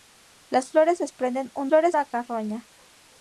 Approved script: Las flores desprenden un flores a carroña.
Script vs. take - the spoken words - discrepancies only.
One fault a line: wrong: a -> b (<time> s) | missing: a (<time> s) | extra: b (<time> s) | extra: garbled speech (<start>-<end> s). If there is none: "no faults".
no faults